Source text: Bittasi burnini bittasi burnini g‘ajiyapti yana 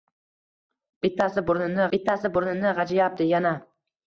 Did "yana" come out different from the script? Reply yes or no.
no